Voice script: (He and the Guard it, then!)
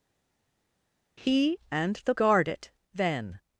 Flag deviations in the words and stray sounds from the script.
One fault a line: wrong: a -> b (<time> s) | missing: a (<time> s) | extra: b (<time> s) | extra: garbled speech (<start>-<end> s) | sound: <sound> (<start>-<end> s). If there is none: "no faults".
no faults